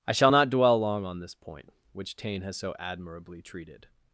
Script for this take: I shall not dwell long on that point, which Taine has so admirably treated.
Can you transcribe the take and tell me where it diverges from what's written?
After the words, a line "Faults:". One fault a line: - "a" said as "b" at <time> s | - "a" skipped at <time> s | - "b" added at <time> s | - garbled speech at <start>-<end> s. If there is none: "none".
I shall not dwell long on this point, which Taine has so admirably treated.
Faults:
- "that" said as "this" at 1.2 s